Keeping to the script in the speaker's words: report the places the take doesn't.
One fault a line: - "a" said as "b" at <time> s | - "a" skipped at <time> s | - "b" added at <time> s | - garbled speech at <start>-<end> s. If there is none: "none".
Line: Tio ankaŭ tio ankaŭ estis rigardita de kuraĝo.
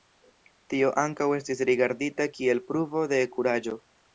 - "tio ankaŭ estis rigardita" said as "estis rigardita kiel pruvo" at 1.4 s